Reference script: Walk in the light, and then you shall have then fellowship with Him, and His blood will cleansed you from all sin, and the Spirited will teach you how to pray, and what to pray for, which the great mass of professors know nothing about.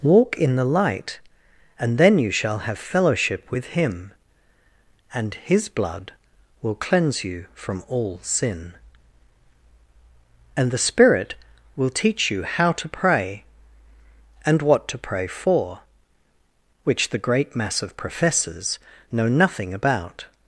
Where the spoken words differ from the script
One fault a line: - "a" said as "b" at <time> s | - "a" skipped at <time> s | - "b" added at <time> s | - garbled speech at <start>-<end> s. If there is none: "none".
- "then" skipped at 2.8 s
- "cleansed" said as "cleanse" at 6.7 s
- "Spirited" said as "Spirit" at 10.8 s